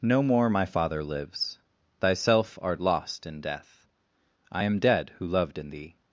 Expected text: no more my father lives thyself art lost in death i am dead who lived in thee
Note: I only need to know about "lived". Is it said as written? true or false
false